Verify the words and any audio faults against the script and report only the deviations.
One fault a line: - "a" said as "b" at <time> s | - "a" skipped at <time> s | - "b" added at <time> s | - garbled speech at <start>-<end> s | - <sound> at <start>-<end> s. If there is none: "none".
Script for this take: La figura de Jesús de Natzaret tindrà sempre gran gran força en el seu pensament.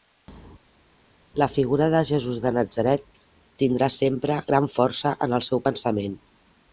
- "gran" skipped at 4.7 s